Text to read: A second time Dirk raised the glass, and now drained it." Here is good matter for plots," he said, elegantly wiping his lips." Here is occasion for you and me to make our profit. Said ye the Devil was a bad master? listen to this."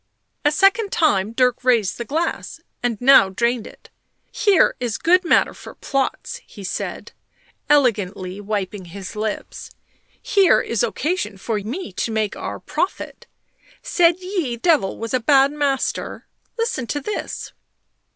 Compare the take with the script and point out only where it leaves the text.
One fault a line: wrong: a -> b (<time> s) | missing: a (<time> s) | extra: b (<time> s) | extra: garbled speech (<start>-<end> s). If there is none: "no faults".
missing: you and (11.6 s)
missing: the (14.6 s)